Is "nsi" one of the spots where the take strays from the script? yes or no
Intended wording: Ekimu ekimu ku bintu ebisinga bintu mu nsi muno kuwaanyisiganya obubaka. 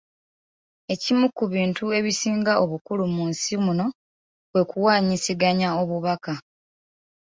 no